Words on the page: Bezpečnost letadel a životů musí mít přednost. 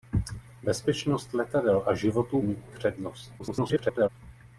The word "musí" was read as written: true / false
false